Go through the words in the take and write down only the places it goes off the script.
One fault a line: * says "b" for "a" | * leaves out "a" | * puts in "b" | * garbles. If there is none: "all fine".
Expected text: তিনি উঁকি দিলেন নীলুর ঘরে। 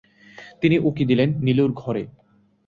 all fine